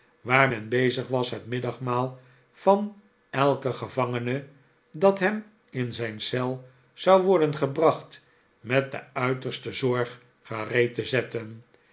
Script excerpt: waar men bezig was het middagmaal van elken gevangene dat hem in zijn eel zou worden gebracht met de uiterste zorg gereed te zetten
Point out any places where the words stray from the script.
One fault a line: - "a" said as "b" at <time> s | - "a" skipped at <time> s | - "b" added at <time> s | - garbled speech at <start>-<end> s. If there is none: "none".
none